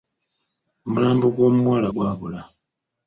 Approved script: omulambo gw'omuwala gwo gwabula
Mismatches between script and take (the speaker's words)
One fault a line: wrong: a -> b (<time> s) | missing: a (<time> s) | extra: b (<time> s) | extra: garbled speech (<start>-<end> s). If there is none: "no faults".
missing: gwo (1.9 s)